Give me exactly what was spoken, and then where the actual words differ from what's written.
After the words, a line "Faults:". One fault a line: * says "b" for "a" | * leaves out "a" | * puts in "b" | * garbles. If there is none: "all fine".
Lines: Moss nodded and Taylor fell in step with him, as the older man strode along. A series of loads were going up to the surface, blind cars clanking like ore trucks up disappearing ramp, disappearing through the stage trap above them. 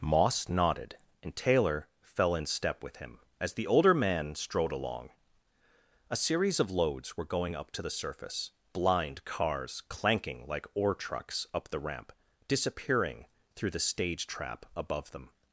Moss nodded and Taylor fell in step with him, as the older man strode along. A series of loads were going up to the surface, blind cars clanking like ore trucks up the ramp, disappearing through the stage trap above them.
Faults:
* says "the" for "disappearing"